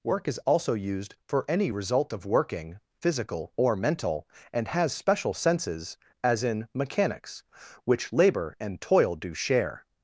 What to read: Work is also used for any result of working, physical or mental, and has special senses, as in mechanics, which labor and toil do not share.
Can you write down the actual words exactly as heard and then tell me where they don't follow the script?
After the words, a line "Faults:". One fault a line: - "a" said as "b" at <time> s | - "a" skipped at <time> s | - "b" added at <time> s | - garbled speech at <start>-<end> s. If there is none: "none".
Work is also used for any result of working, physical or mental, and has special senses, as in mechanics, which labor and toil do share.
Faults:
- "not" skipped at 9.3 s